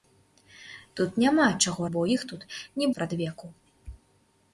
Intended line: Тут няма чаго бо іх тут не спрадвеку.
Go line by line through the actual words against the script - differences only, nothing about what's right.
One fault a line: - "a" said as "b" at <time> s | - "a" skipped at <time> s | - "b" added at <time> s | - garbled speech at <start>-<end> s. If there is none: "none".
none